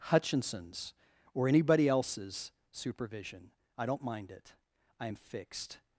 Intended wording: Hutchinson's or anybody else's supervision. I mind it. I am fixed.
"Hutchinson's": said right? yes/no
yes